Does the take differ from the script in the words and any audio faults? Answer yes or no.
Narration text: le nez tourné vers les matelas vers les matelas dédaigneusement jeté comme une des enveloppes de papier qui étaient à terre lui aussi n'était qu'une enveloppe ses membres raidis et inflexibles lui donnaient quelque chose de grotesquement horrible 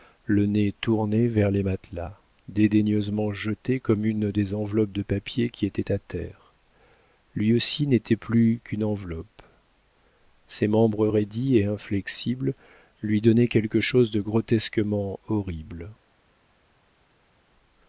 yes